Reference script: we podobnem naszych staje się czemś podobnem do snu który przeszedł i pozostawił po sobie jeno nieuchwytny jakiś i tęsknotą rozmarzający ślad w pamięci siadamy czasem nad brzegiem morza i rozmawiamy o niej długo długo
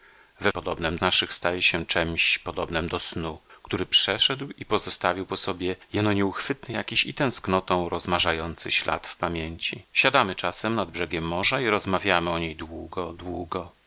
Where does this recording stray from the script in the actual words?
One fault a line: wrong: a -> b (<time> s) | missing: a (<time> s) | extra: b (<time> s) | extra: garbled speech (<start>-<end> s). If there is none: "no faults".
no faults